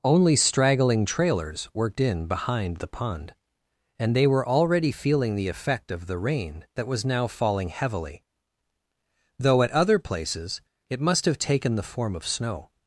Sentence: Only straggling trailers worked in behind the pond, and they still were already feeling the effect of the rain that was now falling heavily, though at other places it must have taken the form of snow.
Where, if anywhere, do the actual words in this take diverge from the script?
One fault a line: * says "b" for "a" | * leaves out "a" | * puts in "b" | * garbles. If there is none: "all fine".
* leaves out "still"